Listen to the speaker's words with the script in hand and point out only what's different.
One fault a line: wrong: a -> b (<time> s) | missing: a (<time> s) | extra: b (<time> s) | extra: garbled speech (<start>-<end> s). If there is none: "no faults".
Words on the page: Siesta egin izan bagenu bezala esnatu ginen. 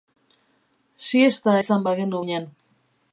missing: egin (1.6 s)
missing: bezala esnatu (2.2 s)